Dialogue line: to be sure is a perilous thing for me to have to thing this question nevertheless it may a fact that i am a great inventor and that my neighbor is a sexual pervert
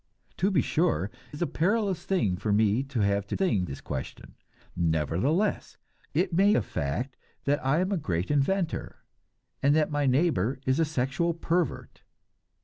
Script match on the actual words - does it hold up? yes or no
yes